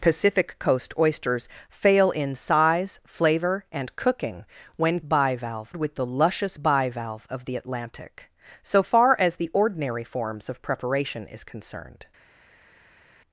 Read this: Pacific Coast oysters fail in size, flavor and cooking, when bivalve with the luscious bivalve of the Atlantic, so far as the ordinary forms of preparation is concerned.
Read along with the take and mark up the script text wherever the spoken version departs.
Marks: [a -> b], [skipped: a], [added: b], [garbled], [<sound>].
Pacific Coast oysters fail in size, flavor and cooking, when bivalve with the luscious bivalve of the Atlantic, so far as the ordinary forms of preparation is concerned.